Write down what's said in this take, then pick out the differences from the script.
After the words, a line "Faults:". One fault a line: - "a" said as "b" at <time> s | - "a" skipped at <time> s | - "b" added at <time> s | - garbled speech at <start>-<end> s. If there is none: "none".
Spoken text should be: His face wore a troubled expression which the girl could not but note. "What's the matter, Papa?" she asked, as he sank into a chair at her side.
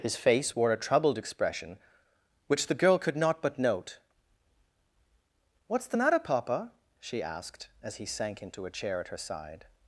His face wore a troubled expression which the girl could not but note. "What's the matter, Papa?" she asked, as he sank into a chair at her side.
Faults:
none